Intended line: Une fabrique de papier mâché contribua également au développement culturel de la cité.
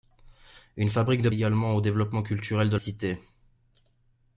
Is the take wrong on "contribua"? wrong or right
wrong